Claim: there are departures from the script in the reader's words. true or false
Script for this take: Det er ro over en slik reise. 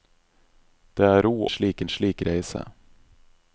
true